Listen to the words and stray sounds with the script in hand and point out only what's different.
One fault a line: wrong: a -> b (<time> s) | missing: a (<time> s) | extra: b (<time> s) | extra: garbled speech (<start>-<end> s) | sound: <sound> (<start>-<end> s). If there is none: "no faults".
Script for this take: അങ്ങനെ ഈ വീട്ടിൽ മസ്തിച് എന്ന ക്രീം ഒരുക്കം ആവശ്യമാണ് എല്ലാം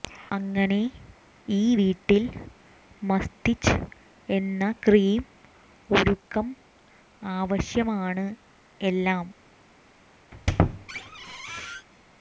sound: squeak (10.3-11.9 s)